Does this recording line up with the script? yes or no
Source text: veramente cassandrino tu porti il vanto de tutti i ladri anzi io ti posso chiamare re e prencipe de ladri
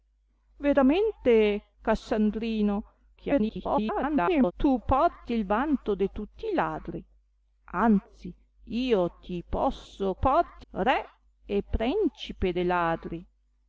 no